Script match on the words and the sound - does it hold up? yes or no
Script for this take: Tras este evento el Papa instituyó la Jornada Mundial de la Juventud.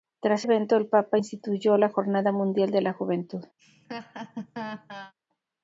no